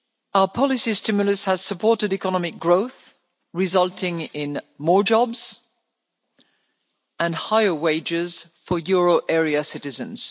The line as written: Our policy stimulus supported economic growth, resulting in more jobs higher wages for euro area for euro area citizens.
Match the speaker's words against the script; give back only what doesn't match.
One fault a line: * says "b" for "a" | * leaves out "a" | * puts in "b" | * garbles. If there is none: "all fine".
* puts in "has"
* puts in "and"
* leaves out "for euro area"